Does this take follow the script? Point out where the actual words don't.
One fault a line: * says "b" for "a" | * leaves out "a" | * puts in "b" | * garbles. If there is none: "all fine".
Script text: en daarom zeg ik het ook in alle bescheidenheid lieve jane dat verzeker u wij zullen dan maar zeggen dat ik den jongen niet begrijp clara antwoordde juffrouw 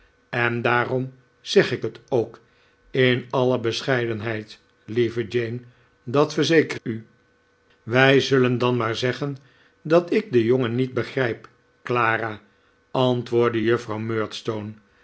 all fine